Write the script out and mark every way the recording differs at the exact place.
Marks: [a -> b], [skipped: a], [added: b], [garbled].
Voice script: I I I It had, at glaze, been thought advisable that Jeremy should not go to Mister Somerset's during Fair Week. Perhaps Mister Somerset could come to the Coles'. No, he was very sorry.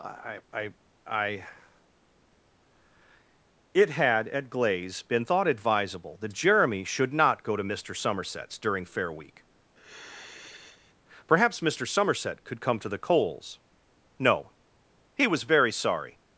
I I I It had, at glaze, been thought advisable that Jeremy should not go to Mister Somerset's during Fair Week. Perhaps Mister Somerset could come to the Coles'. No, he was very sorry.